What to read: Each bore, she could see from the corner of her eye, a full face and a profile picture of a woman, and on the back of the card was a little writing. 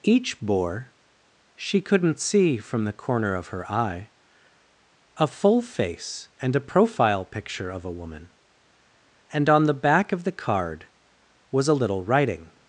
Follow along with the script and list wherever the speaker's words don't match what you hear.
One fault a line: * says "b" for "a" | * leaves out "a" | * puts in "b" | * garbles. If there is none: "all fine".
* says "couldn't" for "could"